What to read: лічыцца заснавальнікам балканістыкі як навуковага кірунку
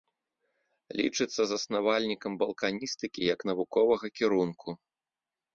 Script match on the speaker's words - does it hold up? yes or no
yes